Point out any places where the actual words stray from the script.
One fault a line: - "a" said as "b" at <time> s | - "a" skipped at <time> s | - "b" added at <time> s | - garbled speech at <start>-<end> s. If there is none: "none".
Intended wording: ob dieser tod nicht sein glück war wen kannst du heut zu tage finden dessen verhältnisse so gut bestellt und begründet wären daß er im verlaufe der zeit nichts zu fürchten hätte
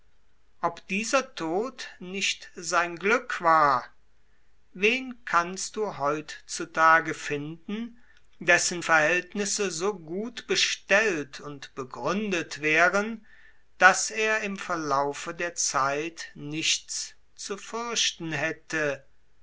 none